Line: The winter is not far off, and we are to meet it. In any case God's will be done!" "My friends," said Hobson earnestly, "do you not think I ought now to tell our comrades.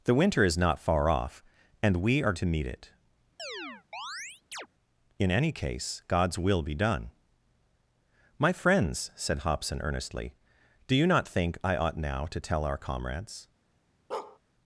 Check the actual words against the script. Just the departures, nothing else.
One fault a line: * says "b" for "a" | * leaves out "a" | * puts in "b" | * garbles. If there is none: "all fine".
all fine